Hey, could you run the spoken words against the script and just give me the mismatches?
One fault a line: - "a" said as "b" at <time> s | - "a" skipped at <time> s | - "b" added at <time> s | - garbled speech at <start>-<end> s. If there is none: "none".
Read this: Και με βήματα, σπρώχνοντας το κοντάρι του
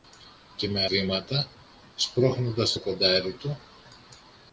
none